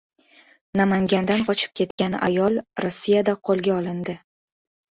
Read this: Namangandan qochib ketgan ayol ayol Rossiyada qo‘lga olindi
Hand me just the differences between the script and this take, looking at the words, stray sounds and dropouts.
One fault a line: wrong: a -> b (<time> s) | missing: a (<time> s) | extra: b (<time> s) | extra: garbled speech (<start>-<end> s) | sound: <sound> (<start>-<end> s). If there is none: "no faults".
sound: dropout (1.9-2.0 s)
missing: ayol (2.6 s)